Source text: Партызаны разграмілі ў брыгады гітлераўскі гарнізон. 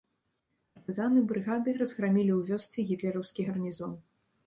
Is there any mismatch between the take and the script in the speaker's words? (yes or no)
yes